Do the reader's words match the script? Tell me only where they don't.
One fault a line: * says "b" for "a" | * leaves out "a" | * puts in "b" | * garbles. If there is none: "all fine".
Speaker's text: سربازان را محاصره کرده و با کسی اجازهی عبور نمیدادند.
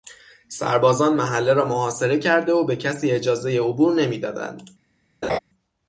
* puts in "محله"
* says "به" for "با"